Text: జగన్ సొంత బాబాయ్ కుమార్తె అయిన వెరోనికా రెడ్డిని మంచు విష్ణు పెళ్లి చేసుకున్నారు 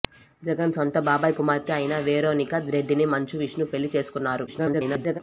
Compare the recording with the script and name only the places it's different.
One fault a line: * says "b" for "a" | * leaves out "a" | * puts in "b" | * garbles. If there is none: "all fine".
* garbles